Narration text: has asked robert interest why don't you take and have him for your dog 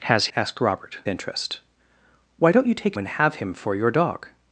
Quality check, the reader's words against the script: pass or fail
pass